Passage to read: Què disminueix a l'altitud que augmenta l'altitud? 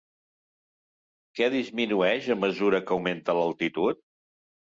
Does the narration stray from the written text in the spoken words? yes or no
yes